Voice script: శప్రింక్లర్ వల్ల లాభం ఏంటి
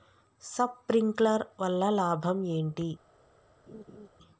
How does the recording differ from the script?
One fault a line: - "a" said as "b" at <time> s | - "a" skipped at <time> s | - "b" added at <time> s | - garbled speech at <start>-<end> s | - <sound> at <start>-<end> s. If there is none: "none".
- laugh at 3.7-4.1 s